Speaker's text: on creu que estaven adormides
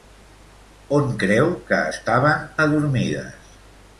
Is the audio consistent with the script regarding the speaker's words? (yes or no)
yes